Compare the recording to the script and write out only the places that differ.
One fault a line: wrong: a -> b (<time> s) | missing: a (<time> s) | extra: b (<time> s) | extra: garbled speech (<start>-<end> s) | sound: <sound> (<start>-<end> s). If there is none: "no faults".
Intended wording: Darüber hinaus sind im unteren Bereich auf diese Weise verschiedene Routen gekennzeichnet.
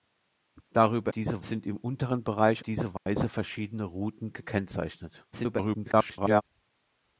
wrong: hinaus -> diese (1.1 s)
missing: auf (2.6 s)
sound: dropout (3.0-3.1 s)
extra: garbled speech (5.3-6.4 s)